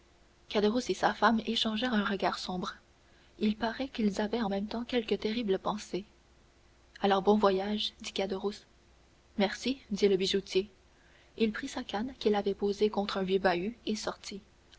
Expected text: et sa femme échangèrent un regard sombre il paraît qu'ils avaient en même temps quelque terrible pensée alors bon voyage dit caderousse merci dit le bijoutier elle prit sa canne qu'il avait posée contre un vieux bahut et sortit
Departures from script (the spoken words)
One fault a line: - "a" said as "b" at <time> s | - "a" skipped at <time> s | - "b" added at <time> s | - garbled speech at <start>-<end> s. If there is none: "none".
- "elle" said as "il" at 11.4 s